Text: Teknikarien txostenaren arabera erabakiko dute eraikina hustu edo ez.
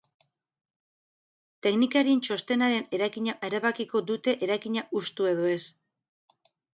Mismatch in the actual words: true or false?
true